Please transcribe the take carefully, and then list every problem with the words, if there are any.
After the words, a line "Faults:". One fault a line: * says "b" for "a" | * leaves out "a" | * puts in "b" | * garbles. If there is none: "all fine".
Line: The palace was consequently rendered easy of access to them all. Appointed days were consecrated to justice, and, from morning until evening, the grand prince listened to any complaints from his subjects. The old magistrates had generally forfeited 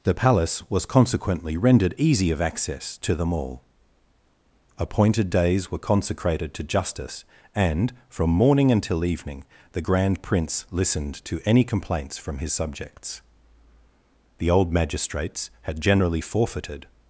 The palace was consequently rendered easy of access to them all. Appointed days were consecrated to justice, and, from morning until evening, the grand prince listened to any complaints from his subjects. The old magistrates had generally forfeited
Faults:
all fine